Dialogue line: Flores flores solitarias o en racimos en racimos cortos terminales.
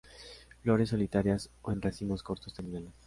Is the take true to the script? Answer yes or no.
no